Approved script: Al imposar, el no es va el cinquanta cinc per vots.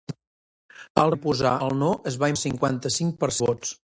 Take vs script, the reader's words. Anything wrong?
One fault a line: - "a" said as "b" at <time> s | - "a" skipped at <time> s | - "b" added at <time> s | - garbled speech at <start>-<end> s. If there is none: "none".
none